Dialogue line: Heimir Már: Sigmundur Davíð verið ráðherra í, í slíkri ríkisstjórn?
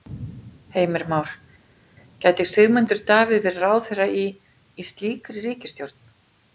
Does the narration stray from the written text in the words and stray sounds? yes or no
yes